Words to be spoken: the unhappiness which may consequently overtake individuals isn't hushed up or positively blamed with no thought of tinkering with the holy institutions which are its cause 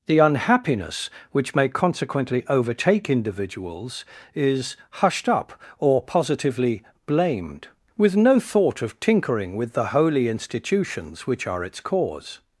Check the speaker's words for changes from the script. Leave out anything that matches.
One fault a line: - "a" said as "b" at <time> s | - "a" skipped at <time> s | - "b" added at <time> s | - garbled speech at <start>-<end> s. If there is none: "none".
- "isn't" said as "is" at 4.3 s